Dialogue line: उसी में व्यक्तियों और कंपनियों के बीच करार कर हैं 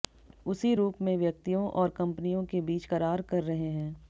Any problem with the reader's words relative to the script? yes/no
yes